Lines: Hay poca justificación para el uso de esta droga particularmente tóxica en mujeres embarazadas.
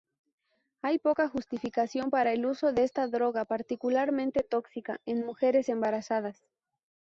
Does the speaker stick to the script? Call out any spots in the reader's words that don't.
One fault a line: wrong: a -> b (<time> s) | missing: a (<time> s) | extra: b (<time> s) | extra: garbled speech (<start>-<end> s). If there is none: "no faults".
no faults